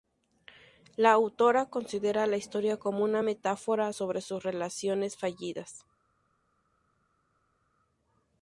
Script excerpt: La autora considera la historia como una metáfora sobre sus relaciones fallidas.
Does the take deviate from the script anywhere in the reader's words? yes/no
no